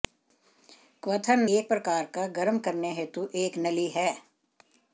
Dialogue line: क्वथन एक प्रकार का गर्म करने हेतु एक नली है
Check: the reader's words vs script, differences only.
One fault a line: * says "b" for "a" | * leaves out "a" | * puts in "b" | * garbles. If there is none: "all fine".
all fine